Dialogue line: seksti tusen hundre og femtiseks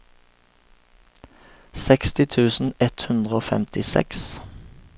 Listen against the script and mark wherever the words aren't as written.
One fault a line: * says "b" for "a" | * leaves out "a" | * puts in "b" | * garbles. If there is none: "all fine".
* puts in "ett"